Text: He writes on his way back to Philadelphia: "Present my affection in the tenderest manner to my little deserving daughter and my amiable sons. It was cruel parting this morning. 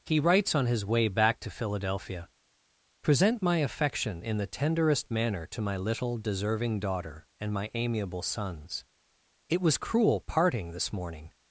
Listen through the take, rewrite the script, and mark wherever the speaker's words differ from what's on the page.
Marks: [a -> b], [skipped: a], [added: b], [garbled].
He writes on his way back to Philadelphia: "Present my affection in the tenderest manner to my little deserving daughter and my amiable sons. It was cruel parting this morning.